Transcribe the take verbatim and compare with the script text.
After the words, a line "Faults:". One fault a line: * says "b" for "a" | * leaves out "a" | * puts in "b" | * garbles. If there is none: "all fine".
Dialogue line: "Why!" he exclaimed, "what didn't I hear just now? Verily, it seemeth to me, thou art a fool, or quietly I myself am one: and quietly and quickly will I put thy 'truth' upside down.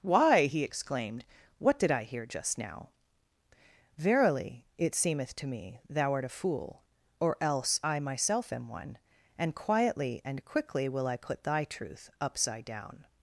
"Why!" he exclaimed, "what did I hear just now? Verily, it seemeth to me, thou art a fool, or else I myself am one: and quietly and quickly will I put thy 'truth' upside down.
Faults:
* says "did" for "didn't"
* says "else" for "quietly"